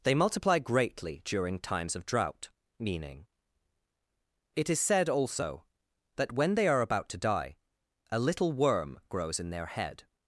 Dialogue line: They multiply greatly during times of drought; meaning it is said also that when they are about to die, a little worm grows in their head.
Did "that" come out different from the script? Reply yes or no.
no